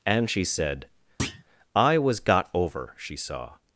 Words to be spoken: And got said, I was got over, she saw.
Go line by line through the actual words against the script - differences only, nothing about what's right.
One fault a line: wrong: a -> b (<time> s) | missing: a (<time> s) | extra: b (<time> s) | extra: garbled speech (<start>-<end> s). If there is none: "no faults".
wrong: got -> she (0.3 s)